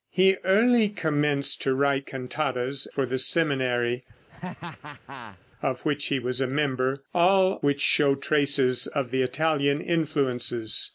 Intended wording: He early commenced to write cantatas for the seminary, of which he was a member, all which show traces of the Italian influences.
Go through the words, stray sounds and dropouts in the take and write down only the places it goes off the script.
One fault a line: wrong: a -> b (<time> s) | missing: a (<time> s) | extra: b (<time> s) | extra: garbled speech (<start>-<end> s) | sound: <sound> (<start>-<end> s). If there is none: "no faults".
sound: laugh (4.3-5.4 s)